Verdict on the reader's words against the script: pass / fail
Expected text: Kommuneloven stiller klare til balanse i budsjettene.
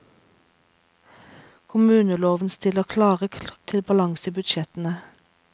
pass